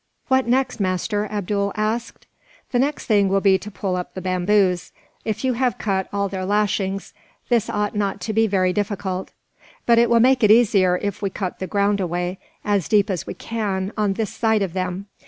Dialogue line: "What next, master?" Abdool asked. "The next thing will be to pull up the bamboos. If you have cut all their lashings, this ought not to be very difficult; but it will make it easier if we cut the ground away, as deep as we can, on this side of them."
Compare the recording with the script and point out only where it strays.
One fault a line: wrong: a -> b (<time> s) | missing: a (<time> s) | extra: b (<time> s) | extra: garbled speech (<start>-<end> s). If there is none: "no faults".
no faults